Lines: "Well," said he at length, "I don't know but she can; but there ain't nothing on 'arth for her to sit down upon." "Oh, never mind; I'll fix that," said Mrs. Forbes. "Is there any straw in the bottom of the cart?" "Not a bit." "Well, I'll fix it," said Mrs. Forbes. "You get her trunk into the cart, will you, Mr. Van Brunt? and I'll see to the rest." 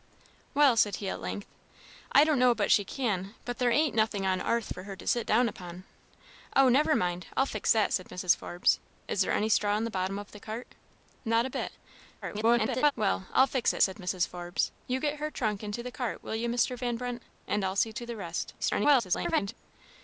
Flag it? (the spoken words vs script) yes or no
yes